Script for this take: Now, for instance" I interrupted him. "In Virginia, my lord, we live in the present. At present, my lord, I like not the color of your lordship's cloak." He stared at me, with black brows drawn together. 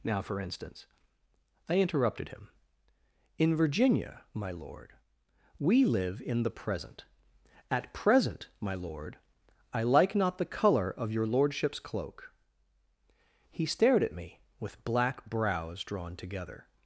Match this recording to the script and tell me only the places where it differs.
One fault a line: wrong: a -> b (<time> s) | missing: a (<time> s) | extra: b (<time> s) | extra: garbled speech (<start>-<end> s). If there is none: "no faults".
no faults